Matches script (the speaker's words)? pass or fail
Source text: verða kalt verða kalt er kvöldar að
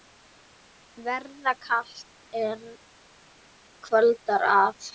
fail